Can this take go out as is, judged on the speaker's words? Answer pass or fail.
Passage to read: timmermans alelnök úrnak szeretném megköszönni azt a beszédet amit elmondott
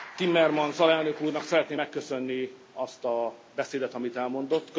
pass